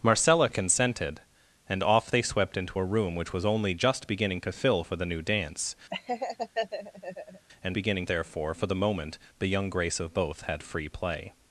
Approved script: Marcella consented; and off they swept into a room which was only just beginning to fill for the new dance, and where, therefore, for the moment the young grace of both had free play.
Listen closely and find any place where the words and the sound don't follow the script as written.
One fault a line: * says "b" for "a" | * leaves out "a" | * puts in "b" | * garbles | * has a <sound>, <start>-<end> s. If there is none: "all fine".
* has a laugh, 5.9-7.5 s
* says "beginning" for "where"